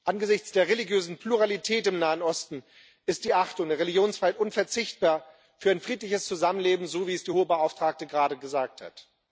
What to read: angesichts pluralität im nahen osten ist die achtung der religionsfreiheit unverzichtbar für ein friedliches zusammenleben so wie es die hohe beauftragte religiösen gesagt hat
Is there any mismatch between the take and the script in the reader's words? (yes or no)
yes